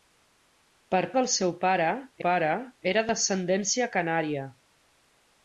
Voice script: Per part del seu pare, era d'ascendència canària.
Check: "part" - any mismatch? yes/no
yes